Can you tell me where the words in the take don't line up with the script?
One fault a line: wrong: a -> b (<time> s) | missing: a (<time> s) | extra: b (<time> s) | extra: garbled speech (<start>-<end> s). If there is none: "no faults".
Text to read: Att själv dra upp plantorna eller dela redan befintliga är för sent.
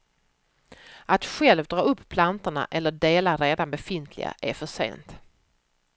no faults